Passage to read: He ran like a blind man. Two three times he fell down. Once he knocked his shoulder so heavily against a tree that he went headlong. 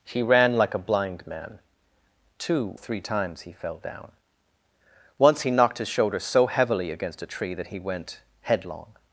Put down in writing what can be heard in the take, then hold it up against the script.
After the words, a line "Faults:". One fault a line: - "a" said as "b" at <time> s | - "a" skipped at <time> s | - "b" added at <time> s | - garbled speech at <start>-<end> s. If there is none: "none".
He ran like a blind man. Two three times he fell down. Once he knocked his shoulder so heavily against a tree that he went headlong.
Faults:
none